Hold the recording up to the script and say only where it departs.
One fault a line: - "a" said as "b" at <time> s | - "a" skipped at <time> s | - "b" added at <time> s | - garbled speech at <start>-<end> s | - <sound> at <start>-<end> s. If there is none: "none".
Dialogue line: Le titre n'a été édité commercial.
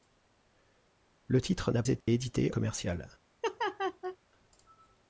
- dropout at 2.0-2.1 s
- laugh at 3.4-4.2 s